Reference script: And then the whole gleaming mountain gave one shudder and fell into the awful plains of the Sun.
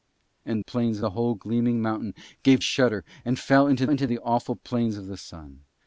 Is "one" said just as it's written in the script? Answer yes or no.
no